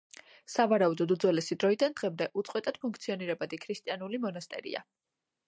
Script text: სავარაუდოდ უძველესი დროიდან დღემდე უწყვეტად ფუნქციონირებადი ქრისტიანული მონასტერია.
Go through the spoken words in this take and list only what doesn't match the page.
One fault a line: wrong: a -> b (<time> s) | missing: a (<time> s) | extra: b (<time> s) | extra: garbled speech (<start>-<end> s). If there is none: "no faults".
no faults